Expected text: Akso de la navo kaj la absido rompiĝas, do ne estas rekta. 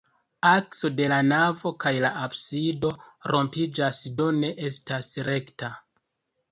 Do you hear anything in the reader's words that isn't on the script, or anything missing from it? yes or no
no